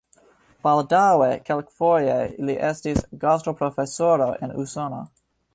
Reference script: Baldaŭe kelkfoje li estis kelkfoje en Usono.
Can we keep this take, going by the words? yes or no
no